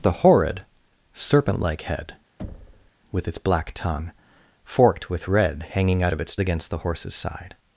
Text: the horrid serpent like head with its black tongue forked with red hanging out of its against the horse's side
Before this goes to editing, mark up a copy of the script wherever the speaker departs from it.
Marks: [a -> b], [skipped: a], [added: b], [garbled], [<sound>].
the horrid serpent like head [thud] with its black tongue forked with red hanging out of its against the horse's side